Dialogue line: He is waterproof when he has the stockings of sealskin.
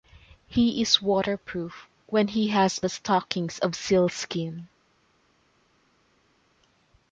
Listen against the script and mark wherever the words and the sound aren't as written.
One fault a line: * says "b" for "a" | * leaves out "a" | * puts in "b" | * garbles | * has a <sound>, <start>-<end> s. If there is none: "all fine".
all fine